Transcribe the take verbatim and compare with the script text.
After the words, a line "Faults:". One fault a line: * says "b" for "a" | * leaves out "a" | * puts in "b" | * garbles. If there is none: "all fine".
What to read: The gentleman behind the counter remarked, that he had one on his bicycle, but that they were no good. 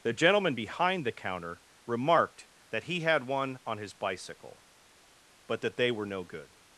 The gentleman behind the counter remarked, that he had one on his bicycle, but that they were no good.
Faults:
all fine